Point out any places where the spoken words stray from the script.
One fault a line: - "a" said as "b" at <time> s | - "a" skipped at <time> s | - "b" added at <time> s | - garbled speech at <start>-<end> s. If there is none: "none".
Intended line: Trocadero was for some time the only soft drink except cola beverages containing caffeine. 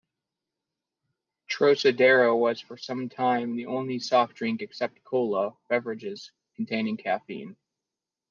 none